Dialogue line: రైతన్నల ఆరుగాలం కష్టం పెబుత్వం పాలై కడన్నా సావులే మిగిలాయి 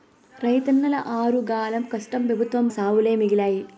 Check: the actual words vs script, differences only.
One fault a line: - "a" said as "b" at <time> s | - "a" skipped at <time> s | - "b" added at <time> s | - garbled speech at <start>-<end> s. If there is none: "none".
- "పాలై కడన్నా" skipped at 2.7 s